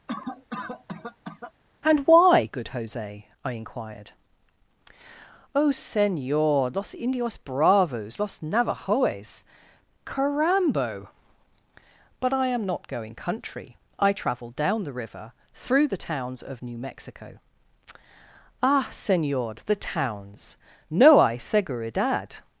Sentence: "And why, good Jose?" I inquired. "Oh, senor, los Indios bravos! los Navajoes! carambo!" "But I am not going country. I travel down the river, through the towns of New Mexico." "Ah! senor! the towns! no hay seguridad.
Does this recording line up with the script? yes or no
yes